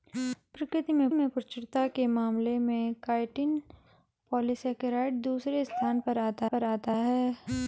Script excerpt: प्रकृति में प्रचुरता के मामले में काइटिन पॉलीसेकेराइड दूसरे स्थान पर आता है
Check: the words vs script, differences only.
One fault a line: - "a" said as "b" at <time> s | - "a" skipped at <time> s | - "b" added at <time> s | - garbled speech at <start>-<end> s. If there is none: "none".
- "में" added at 1.1 s
- "पर आता" added at 6.4 s